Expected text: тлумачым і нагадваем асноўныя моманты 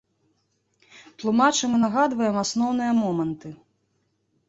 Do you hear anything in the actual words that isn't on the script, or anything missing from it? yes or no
no